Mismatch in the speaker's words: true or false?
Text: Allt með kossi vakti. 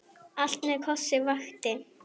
false